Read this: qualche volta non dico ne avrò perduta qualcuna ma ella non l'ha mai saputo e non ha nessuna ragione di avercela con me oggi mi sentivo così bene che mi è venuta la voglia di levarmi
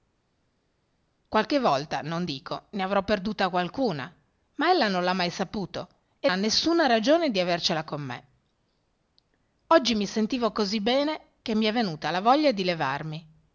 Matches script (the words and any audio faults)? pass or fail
fail